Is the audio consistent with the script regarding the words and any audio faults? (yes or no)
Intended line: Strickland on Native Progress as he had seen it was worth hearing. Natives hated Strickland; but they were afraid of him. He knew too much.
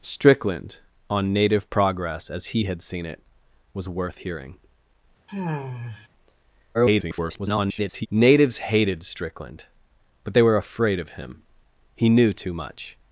no